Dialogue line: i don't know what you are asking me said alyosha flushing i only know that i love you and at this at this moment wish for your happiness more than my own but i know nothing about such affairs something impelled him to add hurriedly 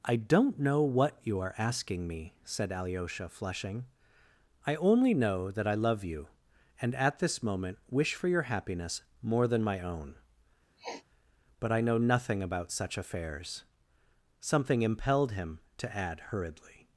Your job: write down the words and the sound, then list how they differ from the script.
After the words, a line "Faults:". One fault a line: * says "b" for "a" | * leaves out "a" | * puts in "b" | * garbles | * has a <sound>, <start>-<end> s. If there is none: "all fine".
i don't know what you are asking me said alyosha flushing i only know that i love you and at this moment wish for your happiness more than my own but i know nothing about such affairs something impelled him to add hurriedly
Faults:
* leaves out "at this"
* has a sniff, 10.8-11.0 s